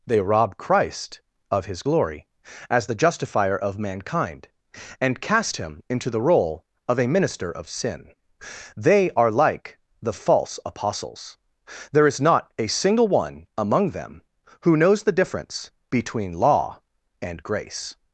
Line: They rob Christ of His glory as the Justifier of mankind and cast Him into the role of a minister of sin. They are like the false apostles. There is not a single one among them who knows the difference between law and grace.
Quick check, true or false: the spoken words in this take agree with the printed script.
true